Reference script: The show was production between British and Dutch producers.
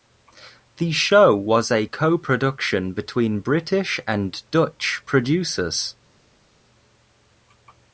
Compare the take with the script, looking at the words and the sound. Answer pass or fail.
fail